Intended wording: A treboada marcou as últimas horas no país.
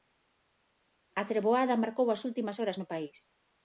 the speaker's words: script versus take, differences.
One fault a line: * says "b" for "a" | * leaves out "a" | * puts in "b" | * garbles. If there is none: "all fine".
all fine